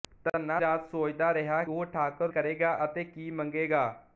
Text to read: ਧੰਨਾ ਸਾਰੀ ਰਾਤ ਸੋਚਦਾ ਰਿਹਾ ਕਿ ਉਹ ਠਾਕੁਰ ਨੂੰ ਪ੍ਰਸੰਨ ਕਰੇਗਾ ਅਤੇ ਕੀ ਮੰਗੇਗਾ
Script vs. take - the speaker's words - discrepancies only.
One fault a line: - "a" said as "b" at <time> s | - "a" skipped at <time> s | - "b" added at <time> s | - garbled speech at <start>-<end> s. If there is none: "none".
- "ਸਾਰੀ" skipped at 0.6 s
- "ਕਿ" skipped at 1.6 s
- "ਨੂੰ ਪ੍ਰਸੰਨ" skipped at 2.3 s